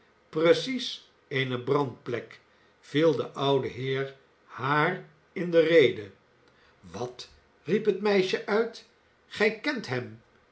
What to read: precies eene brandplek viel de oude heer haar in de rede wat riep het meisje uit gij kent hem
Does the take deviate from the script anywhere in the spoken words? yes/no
no